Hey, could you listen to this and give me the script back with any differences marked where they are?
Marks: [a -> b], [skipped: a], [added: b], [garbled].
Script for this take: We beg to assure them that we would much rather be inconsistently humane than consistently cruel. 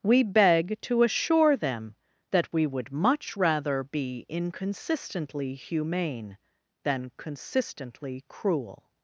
We beg to assure them that we would much rather be inconsistently humane than consistently cruel.